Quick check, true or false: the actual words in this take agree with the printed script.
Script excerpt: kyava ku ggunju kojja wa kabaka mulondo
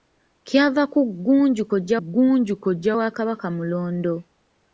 false